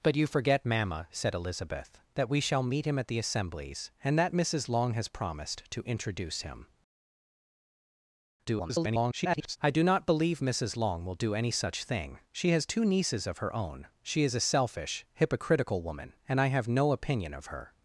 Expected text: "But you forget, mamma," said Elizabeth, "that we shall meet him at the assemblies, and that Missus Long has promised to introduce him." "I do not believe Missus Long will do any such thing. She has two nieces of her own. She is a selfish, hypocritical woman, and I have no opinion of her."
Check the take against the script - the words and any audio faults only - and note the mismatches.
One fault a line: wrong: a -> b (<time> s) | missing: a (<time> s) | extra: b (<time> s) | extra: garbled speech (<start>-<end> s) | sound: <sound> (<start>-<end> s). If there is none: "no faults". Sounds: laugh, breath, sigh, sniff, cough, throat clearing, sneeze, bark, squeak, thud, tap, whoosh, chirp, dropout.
extra: garbled speech (8.4-9.6 s)